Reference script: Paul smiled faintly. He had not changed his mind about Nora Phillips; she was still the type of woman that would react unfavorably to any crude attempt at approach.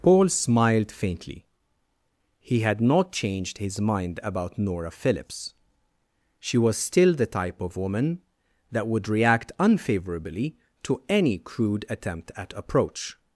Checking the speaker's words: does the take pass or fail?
pass